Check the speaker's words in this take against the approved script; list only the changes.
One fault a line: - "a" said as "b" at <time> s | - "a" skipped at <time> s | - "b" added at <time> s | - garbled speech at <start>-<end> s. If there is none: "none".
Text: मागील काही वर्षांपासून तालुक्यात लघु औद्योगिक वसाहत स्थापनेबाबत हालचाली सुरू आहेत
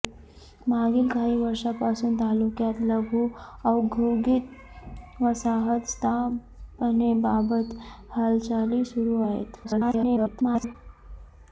- garbled speech at 9.6-10.8 s